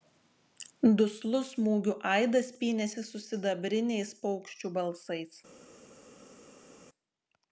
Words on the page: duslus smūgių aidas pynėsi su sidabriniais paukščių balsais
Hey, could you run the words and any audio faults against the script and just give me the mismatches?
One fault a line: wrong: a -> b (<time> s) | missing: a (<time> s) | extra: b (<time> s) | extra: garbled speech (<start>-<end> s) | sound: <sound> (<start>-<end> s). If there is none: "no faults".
no faults